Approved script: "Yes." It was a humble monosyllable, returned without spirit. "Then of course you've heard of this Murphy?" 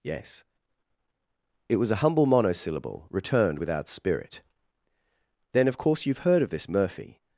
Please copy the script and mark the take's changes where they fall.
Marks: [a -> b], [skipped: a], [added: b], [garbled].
"Yes." It was a humble monosyllable, returned without spirit. "Then of course you've heard of this Murphy?"